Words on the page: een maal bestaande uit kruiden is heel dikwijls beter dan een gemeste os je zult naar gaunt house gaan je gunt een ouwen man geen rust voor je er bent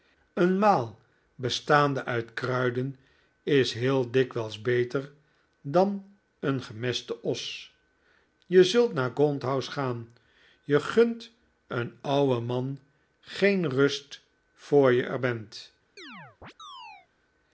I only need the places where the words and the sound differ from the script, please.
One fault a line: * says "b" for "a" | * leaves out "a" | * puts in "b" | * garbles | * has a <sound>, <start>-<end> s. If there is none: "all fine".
* has a chirp, 16.0-17.1 s